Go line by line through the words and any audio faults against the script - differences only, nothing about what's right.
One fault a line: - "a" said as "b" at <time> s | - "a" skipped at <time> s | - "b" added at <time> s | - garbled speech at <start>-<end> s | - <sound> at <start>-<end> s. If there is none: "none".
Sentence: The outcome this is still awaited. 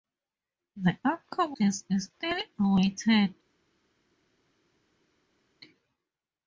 none